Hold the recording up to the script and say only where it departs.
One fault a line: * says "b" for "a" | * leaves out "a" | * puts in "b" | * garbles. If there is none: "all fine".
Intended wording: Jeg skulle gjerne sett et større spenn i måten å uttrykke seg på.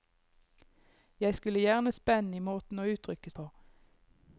* leaves out "sett et større"
* leaves out "seg"